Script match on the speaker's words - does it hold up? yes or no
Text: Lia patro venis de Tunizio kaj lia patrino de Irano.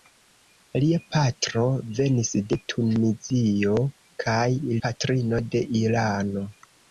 no